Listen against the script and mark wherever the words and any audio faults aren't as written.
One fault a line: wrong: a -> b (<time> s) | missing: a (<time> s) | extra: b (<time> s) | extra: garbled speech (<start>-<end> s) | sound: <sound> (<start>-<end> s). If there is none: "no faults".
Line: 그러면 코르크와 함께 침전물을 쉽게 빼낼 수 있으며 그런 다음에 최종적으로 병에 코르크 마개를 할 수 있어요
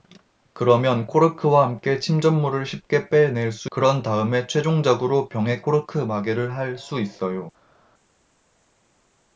missing: 있으며 (3.7 s)